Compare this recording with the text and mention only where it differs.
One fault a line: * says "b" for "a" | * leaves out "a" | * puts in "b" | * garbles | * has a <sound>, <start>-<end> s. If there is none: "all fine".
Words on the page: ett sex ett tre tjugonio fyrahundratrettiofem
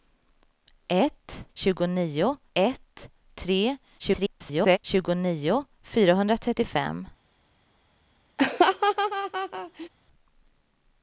* says "tjugonio" for "sex"
* garbles
* has a laugh, 8.4-9.9 s